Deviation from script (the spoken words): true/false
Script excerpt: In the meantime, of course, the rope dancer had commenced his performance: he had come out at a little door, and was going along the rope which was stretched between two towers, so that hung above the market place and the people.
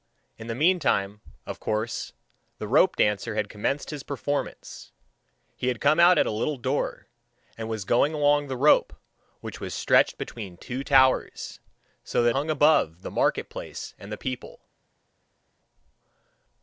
false